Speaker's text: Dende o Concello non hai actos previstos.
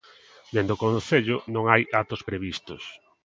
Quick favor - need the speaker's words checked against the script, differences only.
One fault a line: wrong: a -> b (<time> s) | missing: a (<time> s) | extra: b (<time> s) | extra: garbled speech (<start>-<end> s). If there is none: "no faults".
no faults